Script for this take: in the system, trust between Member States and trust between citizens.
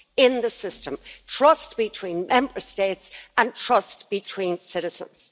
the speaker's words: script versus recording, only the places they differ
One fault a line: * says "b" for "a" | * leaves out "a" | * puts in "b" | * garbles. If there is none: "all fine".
all fine